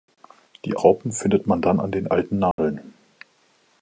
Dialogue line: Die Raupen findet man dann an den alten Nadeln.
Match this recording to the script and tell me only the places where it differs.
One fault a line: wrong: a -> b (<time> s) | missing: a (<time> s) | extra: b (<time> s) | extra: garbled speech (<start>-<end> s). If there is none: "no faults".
no faults